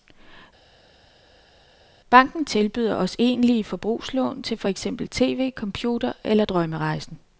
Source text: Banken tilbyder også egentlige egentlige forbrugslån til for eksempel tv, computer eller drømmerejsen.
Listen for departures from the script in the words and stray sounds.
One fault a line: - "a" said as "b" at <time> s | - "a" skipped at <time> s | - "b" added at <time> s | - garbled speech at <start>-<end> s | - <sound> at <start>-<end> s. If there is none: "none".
- "egentlige" skipped at 3.6 s